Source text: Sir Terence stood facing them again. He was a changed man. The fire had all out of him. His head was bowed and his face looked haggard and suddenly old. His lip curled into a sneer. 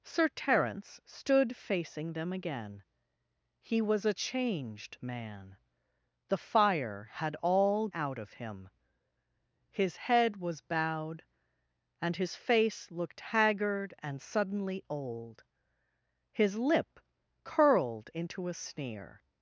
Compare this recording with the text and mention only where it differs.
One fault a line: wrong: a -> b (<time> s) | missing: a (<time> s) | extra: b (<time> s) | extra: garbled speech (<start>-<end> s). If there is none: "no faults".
no faults